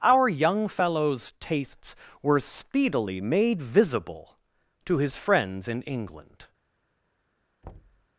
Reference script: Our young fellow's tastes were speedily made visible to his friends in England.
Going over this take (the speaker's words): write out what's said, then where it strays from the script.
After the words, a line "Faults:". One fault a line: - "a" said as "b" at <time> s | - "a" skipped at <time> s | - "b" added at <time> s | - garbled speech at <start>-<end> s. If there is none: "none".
Our young fellow's tastes were speedily made visible to his friends in England.
Faults:
none